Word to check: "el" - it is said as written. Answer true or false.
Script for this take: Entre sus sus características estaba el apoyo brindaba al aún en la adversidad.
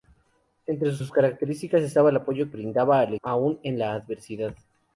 true